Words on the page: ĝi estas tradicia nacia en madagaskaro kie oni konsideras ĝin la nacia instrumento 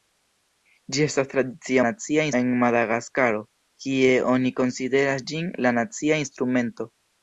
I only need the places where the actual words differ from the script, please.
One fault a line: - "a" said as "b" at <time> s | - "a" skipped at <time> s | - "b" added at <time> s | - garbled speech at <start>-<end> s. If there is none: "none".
none